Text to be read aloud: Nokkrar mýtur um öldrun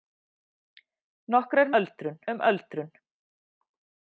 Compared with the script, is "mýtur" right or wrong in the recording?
wrong